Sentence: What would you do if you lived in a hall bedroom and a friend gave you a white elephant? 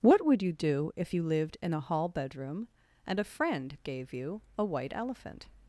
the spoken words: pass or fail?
pass